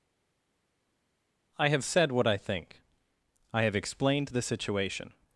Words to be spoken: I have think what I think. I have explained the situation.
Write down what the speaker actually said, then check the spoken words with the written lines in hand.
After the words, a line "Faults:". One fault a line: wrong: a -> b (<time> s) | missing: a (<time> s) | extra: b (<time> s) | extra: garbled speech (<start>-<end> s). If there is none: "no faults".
I have said what I think. I have explained the situation.
Faults:
wrong: think -> said (1.8 s)